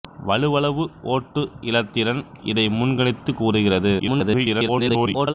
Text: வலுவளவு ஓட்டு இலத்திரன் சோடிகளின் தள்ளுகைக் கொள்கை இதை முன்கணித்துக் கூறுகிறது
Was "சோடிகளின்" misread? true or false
true